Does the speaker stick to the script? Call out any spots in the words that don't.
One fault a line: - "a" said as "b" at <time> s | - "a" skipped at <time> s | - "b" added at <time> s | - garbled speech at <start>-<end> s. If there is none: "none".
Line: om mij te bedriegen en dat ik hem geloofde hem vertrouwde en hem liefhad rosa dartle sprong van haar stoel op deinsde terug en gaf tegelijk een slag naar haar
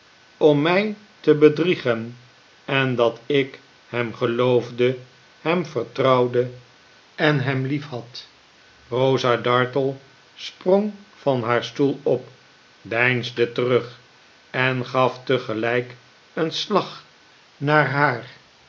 none